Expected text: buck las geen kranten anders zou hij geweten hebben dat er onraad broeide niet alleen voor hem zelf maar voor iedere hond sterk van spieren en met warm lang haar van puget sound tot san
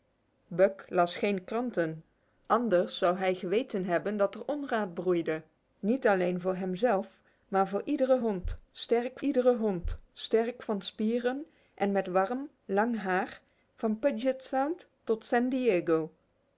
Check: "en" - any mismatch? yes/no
no